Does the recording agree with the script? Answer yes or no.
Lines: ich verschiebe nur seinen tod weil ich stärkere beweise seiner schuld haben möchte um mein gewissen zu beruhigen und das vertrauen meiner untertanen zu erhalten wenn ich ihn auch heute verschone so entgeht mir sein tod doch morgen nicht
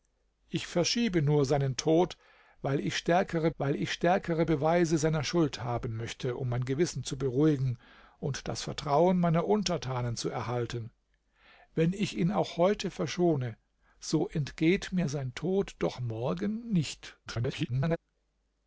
no